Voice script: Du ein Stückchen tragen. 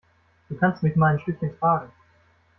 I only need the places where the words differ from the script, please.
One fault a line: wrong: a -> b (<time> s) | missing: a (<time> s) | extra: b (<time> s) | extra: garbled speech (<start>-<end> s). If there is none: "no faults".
extra: kannst mich mal (0.6 s)